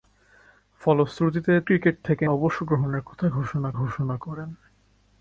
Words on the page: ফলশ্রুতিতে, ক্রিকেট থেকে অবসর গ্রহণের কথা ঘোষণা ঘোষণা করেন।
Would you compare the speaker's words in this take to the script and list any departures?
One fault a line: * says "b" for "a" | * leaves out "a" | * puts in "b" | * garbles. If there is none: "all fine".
all fine